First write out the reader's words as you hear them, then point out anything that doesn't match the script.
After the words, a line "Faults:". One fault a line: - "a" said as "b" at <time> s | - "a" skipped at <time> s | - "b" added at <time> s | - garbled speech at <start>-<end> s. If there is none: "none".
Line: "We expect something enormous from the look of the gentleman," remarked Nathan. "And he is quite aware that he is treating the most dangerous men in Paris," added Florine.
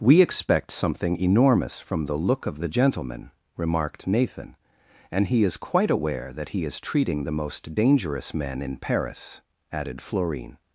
"We expect something enormous from the look of the gentleman," remarked Nathan. "And he is quite aware that he is treating the most dangerous men in Paris," added Florine.
Faults:
none